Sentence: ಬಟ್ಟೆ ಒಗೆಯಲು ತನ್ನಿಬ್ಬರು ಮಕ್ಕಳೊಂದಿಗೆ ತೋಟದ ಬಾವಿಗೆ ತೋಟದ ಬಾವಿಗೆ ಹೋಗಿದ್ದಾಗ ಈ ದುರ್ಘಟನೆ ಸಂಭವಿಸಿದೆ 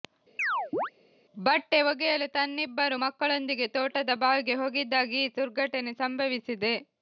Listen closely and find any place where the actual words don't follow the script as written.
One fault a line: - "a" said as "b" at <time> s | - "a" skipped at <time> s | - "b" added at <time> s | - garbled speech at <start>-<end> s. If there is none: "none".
- "ತೋಟದ ಬಾವಿಗೆ" skipped at 4.6 s